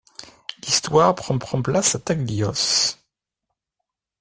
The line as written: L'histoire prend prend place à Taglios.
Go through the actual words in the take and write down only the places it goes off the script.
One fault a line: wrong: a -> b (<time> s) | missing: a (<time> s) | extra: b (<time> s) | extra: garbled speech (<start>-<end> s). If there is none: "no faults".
no faults